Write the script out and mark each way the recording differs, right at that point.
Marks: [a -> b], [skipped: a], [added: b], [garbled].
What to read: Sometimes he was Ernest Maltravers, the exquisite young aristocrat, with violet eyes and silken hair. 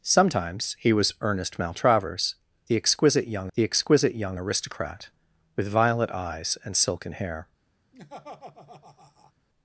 Sometimes he was Ernest Maltravers, the exquisite young [added: the exquisite young] aristocrat, with violet eyes and silken hair.